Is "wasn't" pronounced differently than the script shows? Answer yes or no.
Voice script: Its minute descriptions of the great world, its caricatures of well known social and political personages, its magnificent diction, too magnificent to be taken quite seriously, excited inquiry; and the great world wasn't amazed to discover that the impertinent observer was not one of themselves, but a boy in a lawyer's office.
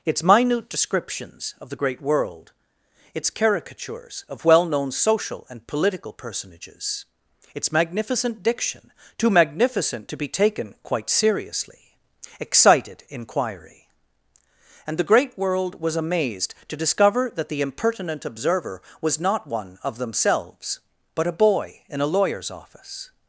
yes